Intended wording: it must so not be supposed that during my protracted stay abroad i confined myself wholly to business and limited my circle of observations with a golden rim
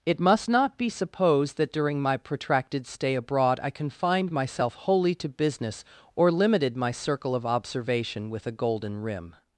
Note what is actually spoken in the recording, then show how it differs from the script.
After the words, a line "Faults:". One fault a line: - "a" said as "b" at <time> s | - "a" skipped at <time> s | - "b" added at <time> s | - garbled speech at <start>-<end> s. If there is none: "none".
it must not be supposed that during my protracted stay abroad i confined myself wholly to business or limited my circle of observation with a golden rim
Faults:
- "so" skipped at 0.5 s
- "and" said as "or" at 6.1 s
- "observations" said as "observation" at 7.4 s